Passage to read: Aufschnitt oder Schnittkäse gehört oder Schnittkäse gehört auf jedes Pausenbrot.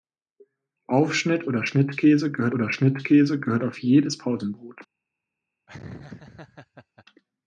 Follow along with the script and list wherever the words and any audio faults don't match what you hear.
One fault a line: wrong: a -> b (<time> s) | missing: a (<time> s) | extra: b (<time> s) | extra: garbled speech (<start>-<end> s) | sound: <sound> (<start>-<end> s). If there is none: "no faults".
sound: laugh (5.7-7.0 s)